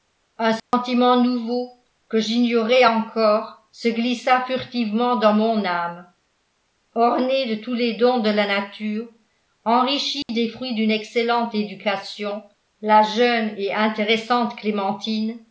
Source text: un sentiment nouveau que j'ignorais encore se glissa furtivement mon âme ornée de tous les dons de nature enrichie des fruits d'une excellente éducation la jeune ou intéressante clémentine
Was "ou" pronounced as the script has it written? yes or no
no